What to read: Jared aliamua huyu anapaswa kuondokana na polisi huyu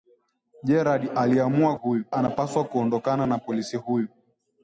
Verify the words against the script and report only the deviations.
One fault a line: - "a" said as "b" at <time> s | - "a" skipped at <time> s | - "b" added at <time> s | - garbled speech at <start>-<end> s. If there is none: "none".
none